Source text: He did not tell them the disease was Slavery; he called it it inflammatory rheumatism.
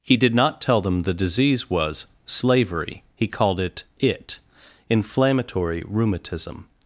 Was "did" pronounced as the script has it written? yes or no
yes